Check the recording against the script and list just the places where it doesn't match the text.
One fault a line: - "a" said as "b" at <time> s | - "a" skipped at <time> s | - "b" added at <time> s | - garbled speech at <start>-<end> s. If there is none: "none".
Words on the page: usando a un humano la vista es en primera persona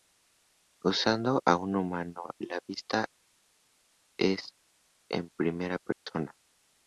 none